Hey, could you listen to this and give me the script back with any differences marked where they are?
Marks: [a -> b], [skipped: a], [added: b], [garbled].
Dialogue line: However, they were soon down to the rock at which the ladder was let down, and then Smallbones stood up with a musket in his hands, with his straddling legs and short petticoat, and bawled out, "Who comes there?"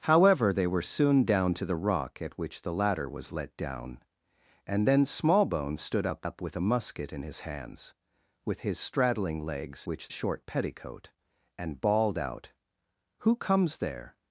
However, they were soon down to the rock at which the ladder was let down, and then Smallbones stood up [added: up] with a musket in his hands, with his straddling legs [and -> which] short petticoat, and bawled out, "Who comes there?"